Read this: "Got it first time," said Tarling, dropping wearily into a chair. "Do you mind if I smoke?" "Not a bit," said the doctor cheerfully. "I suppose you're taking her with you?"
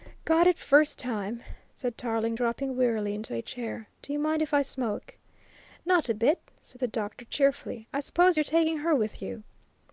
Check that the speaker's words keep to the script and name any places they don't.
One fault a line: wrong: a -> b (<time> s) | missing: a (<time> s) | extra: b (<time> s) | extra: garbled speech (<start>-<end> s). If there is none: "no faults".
no faults